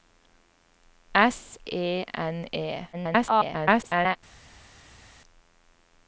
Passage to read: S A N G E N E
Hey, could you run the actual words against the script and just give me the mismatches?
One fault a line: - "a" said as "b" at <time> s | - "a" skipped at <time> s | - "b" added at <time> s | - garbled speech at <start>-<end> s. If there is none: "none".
- "A N G" skipped at 1.6 s
- garbled speech at 2.9-4.2 s